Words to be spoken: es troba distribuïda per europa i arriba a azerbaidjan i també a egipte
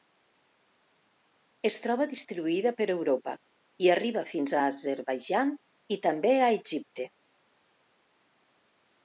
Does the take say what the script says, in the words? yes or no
no